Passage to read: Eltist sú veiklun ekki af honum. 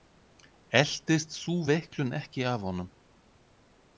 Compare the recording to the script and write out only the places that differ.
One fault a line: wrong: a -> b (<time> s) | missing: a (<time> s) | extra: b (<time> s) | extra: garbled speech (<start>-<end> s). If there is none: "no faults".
no faults